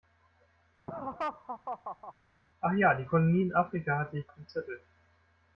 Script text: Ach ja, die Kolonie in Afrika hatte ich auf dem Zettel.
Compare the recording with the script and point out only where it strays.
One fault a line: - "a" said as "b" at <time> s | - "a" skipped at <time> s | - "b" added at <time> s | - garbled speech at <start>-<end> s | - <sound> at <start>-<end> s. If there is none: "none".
- laugh at 0.9-2.1 s